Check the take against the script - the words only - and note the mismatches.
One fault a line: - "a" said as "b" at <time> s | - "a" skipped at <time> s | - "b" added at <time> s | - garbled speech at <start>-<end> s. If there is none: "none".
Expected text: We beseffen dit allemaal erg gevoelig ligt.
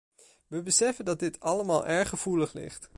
- "dat" added at 1.1 s